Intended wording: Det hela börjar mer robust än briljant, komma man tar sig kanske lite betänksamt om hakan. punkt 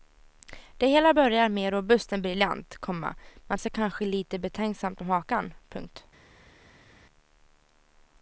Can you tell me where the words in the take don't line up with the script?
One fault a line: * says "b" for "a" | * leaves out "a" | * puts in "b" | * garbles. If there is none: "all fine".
* leaves out "tar"